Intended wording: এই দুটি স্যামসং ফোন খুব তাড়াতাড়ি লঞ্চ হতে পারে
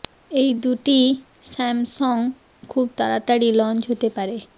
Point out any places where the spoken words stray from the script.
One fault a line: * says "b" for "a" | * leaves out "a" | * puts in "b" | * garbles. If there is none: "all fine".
* leaves out "ফোন"